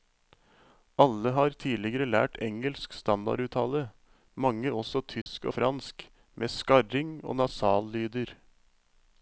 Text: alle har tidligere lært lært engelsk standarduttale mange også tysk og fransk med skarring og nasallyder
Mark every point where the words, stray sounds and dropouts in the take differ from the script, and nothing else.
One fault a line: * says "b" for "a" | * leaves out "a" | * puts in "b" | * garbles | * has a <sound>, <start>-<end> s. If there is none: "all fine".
* leaves out "lært"
* has a dropout, 5.2-5.3 s